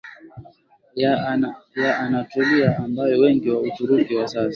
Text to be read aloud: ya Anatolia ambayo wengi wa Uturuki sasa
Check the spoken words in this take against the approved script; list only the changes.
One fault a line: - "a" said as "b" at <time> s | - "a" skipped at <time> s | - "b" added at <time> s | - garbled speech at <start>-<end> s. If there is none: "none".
- "wa" added at 4.2 s